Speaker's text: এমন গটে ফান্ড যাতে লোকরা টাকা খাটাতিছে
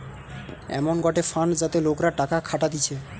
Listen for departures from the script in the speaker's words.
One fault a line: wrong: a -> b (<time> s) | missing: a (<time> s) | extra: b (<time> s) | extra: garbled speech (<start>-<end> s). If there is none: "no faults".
no faults